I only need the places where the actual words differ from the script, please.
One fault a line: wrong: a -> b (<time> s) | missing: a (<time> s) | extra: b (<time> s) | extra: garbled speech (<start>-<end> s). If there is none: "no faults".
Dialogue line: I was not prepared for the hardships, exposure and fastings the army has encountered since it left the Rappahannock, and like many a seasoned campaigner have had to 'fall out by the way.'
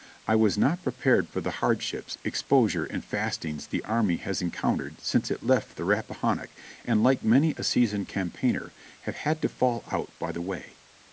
no faults